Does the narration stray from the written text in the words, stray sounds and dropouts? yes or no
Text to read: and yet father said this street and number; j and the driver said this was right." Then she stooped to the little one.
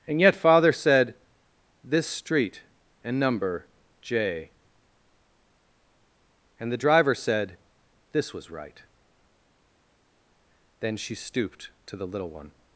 no